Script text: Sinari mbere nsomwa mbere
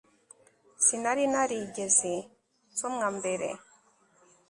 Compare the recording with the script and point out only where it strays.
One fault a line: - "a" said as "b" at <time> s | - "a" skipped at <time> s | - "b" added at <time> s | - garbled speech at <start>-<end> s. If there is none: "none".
- "mbere" said as "narigeze" at 1.3 s